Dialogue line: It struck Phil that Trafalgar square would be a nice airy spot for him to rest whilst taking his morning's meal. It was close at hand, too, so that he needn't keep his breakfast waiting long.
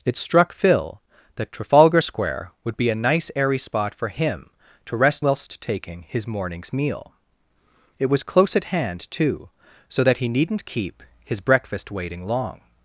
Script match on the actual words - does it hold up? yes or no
yes